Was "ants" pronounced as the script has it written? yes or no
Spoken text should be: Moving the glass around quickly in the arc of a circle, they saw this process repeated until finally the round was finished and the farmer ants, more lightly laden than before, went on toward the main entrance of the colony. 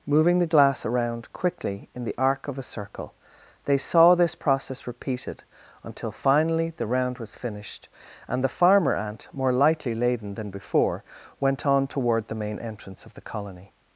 no